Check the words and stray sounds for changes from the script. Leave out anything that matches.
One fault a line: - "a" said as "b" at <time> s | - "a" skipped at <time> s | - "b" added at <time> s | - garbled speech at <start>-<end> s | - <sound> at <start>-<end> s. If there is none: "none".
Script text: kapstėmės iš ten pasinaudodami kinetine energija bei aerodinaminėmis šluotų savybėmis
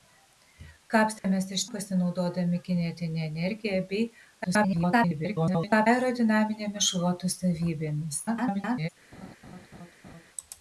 - dropout at 1.2-1.2 s
- "ten" skipped at 1.6 s
- garbled speech at 4.4-5.9 s
- garbled speech at 8.3-8.9 s
- laugh at 9.1-10.3 s